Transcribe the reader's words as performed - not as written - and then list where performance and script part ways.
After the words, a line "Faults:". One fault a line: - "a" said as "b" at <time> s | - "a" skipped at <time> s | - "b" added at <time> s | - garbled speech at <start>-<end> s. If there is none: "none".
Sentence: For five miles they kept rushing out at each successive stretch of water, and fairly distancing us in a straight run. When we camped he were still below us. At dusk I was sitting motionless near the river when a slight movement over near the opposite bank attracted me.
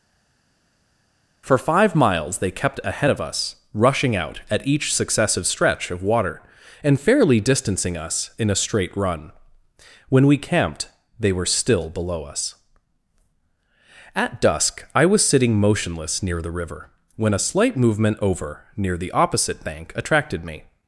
For five miles they kept ahead of us, rushing out at each successive stretch of water, and fairly distancing us in a straight run. When we camped they were still below us. At dusk I was sitting motionless near the river when a slight movement over near the opposite bank attracted me.
Faults:
- "ahead of us" added at 2.8 s
- "he" said as "they" at 11.2 s